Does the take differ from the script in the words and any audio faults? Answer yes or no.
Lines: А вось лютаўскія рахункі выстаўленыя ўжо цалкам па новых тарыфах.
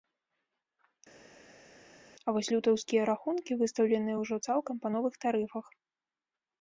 no